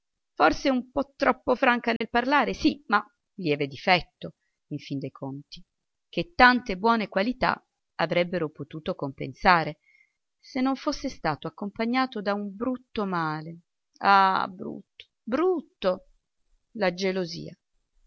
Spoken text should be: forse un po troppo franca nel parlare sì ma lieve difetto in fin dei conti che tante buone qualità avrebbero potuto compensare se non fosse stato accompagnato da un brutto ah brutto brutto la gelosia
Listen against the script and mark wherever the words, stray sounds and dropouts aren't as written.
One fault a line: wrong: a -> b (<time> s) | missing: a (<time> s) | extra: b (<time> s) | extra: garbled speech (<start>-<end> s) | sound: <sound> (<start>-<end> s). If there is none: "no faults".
sound: dropout (2.0-2.0 s)
extra: male (13.1 s)